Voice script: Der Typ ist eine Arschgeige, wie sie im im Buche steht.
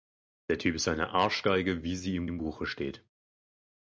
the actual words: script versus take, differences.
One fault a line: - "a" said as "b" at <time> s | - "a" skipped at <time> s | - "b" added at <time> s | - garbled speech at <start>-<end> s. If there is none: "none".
none